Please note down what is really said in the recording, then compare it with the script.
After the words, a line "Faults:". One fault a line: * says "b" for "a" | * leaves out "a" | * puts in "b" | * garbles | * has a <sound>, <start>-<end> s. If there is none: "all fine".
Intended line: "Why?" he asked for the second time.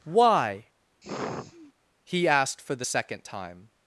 "Why?" he asked for the second time.
Faults:
* has a sigh, 1.0-1.7 s